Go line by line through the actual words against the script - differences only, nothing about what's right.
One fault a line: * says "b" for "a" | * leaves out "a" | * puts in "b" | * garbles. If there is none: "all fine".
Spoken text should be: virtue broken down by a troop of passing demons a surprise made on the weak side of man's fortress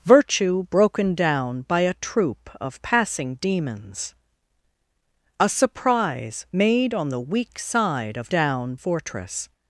* says "down" for "man's"